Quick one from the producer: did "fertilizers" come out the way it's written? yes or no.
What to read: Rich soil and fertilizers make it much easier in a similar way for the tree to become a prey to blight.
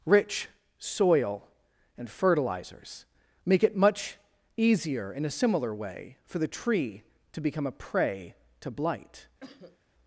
yes